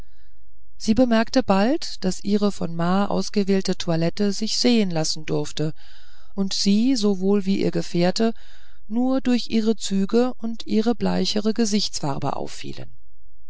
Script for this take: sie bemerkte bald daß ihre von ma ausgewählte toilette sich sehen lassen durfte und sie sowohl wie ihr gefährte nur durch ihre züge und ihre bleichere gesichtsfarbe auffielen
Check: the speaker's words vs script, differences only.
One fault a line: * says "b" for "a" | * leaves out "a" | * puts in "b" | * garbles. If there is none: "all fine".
all fine